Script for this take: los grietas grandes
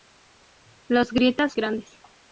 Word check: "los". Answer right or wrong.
right